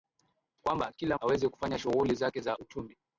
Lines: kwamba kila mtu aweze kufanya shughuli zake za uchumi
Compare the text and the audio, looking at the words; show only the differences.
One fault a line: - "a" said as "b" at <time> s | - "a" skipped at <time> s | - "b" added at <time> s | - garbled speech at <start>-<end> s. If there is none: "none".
- "mtu" skipped at 1.2 s